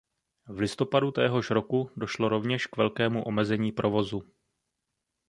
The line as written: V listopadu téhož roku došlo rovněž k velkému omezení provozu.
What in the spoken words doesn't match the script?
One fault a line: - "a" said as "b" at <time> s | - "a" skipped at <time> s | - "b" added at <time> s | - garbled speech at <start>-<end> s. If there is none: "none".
none